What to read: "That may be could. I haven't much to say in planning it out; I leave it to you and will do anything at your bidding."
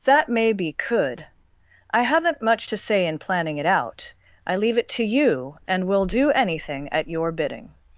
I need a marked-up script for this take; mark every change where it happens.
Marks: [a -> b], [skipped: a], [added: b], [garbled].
"That may be could. I haven't much to say in planning it out; I leave it to you and will do anything at your bidding."